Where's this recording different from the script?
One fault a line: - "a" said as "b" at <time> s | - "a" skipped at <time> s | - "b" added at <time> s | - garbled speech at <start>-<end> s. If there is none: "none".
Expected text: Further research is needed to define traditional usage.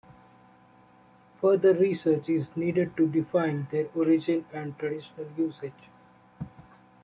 - "their origin and" added at 3.7 s